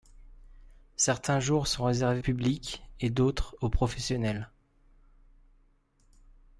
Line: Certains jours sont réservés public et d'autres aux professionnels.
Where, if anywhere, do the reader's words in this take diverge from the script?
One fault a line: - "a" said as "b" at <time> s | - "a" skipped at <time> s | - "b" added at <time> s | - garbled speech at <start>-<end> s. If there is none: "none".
none